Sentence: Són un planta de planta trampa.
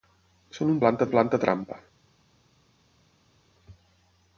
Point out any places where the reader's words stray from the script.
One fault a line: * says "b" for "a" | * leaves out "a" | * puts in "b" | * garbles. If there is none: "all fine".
all fine